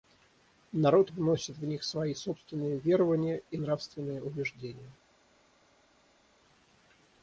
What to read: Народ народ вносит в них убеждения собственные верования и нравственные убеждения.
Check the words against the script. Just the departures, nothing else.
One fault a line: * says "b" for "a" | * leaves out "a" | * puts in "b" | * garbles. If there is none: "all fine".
* leaves out "народ"
* says "свои" for "убеждения"